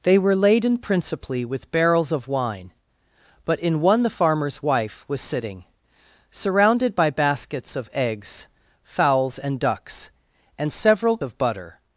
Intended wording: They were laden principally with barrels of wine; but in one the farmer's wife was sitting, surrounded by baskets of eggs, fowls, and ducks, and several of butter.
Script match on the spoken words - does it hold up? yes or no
yes